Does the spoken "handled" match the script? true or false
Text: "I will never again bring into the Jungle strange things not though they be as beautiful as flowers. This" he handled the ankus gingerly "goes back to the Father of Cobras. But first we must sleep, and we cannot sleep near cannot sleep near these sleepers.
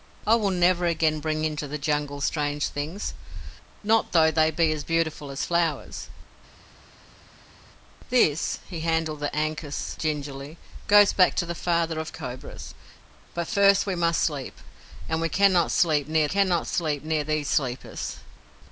true